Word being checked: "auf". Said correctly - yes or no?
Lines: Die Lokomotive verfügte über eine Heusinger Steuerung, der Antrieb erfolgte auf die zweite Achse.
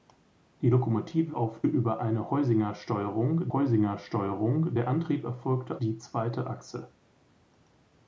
no